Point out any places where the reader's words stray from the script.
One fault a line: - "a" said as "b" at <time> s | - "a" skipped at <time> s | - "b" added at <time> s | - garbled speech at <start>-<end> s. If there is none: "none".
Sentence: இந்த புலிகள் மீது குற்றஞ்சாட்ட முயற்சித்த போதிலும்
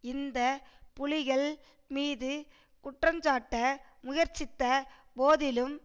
none